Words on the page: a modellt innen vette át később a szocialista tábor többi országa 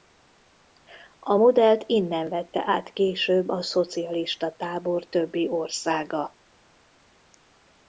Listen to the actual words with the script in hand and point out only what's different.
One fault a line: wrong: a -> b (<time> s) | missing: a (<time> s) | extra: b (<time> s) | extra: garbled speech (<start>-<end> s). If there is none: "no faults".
no faults